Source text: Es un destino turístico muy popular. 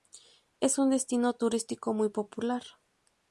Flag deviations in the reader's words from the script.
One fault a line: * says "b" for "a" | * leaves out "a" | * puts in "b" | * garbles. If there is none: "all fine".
all fine